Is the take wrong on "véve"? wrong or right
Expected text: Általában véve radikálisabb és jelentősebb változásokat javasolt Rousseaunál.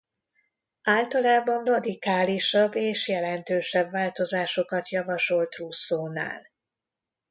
wrong